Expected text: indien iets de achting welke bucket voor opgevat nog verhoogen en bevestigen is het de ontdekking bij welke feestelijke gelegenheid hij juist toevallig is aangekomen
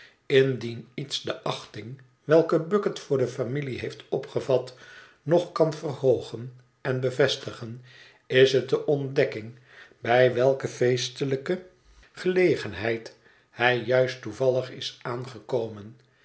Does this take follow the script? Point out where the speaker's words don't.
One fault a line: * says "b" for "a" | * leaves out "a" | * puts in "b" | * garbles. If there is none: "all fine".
* puts in "de familie heeft"
* puts in "kan"